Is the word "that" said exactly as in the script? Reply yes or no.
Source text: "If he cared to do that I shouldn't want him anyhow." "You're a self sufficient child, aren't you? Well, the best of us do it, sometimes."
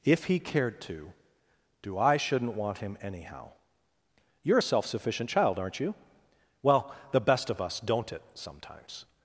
no